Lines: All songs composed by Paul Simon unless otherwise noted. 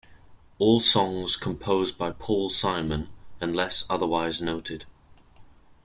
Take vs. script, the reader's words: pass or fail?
pass